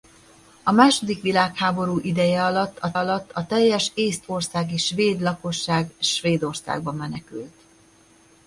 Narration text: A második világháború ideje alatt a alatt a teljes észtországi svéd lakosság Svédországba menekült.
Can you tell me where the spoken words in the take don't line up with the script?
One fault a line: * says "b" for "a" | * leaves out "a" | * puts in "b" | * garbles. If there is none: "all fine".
all fine